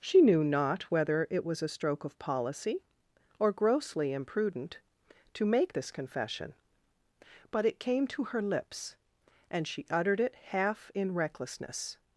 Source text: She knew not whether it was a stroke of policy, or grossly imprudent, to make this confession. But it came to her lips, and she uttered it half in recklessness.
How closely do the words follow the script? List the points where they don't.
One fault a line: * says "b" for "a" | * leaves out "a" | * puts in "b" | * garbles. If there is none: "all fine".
all fine